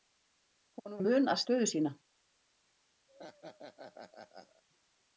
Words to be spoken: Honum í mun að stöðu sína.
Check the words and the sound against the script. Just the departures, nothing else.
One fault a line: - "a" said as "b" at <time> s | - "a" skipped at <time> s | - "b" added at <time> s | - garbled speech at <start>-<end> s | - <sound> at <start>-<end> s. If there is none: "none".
- laugh at 3.1-4.6 s